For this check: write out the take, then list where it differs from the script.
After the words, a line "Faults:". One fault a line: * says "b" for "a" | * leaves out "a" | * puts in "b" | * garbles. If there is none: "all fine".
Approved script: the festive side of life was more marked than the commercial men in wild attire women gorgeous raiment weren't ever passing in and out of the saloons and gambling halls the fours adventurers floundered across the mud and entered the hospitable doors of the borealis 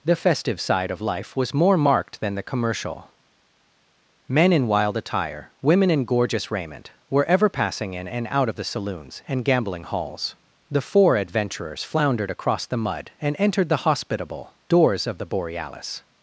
the festive side of life was more marked than the commercial men in wild attire women in gorgeous raiment were ever passing in and out of the saloons and gambling halls the four adventurers floundered across the mud and entered the hospitable doors of the borealis
Faults:
* puts in "in"
* says "were" for "weren't"
* says "four" for "fours"